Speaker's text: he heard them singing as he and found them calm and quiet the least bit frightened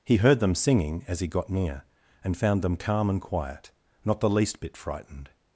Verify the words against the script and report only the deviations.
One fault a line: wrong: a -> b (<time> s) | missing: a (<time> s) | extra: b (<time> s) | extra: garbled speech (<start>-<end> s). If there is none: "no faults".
extra: got near (1.3 s)
extra: not (4.0 s)